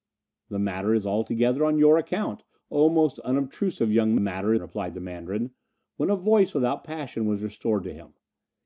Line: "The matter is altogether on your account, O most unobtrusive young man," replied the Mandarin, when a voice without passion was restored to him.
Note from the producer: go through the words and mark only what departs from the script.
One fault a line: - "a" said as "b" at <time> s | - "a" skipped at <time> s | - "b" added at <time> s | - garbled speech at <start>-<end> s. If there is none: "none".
- "man" said as "matter" at 4.2 s